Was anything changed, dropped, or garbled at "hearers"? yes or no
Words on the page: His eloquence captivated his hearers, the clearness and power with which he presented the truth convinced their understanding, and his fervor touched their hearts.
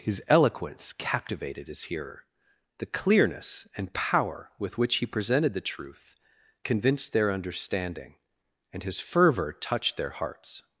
yes